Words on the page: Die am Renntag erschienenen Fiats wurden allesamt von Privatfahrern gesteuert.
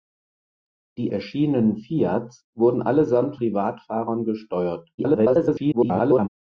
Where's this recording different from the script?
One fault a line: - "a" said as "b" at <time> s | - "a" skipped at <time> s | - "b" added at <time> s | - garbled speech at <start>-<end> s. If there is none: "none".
- "am Renntag" skipped at 1.1 s
- "von" skipped at 3.4 s
- garbled speech at 5.0-6.3 s